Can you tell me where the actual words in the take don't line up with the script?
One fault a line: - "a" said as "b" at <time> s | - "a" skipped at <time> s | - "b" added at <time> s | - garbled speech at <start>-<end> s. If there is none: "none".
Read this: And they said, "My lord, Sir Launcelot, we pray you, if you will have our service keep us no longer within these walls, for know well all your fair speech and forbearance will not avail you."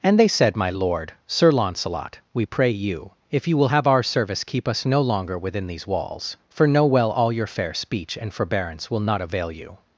none